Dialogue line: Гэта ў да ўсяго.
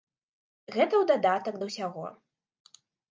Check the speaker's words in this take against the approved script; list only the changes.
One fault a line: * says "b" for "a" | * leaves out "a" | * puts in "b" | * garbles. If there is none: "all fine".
* puts in "дадатак"